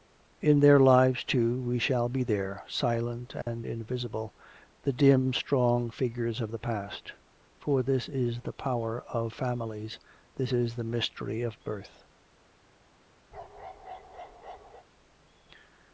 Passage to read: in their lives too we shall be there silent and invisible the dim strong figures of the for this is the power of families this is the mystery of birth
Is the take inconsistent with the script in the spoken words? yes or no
yes